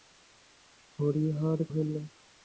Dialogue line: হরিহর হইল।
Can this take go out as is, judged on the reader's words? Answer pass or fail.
pass